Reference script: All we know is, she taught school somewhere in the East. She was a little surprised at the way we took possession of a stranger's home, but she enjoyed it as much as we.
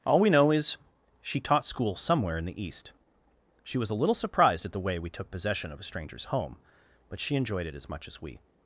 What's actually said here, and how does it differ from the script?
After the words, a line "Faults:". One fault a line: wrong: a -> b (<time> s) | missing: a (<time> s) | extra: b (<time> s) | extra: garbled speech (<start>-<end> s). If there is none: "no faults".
All we know is, she taught school somewhere in the East. She was a little surprised at the way we took possession of a stranger's home, but she enjoyed it as much as we.
Faults:
no faults